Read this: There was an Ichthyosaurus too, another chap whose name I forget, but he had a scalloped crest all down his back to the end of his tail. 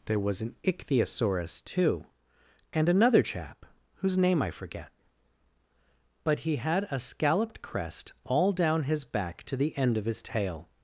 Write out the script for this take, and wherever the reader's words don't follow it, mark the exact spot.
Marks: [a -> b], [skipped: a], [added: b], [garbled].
There was an Ichthyosaurus too, [added: and] another chap whose name I forget, but he had a scalloped crest all down his back to the end of his tail.